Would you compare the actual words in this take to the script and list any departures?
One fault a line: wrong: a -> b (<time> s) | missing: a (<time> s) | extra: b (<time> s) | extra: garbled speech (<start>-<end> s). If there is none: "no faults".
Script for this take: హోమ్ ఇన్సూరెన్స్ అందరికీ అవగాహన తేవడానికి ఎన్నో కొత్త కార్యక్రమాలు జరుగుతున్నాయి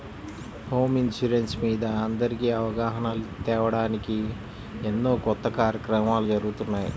extra: మీద (1.6 s)